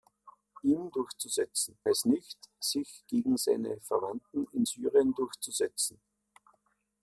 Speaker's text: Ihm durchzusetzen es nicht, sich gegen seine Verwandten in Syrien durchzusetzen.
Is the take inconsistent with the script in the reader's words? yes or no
no